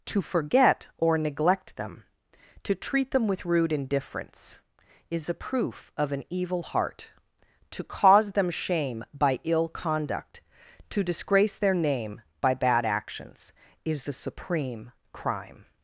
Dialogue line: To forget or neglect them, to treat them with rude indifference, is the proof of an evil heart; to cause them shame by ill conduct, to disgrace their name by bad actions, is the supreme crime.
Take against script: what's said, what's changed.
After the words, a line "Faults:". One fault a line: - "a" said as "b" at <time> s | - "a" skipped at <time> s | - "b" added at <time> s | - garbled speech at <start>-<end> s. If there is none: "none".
To forget or neglect them, to treat them with rude indifference, is the proof of an evil heart; to cause them shame by ill conduct, to disgrace their name by bad actions, is the supreme crime.
Faults:
none